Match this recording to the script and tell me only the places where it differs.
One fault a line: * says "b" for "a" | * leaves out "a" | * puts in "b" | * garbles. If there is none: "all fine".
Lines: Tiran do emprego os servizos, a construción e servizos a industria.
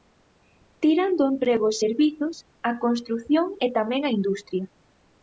* says "tamén" for "servizos"